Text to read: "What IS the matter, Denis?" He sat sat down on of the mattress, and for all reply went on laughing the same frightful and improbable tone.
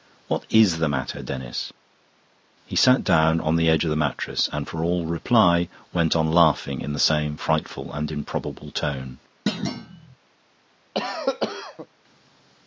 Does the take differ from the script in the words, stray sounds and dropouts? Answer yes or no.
yes